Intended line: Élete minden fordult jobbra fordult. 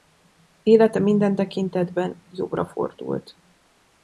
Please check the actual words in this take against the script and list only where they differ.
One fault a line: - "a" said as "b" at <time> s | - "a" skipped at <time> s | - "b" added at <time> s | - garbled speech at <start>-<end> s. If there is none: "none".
- "fordult" said as "tekintetben" at 1.3 s